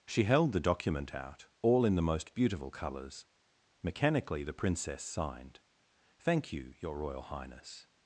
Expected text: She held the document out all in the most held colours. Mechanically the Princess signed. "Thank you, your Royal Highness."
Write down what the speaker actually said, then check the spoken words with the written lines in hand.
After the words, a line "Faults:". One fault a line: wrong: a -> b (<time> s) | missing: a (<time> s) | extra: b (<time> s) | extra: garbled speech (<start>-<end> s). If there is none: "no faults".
She held the document out all in the most beautiful colours. Mechanically the Princess signed. "Thank you, your Royal Highness."
Faults:
wrong: held -> beautiful (2.3 s)